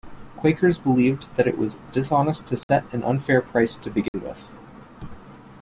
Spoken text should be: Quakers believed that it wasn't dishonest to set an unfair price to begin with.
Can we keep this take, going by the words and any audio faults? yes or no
no